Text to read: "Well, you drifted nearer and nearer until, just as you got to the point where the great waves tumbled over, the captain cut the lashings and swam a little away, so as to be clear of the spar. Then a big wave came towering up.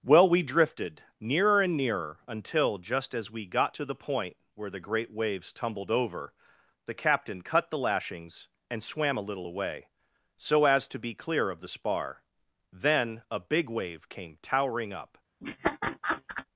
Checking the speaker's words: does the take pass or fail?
fail